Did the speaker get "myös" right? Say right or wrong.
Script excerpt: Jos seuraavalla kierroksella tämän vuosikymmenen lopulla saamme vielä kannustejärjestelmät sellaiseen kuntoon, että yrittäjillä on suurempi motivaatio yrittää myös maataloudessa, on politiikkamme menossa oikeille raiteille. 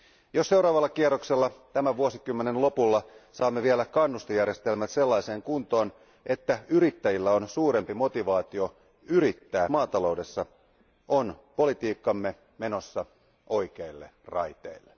wrong